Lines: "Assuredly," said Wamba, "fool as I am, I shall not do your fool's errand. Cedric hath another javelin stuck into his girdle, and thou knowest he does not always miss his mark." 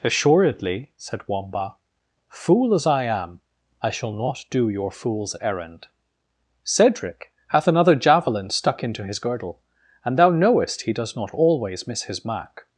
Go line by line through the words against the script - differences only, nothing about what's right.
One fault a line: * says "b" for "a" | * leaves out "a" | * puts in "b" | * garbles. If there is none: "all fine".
all fine